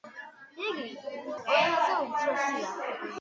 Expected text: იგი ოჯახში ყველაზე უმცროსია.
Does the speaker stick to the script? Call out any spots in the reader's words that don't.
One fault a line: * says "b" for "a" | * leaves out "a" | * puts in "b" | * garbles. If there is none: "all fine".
* leaves out "ოჯახში"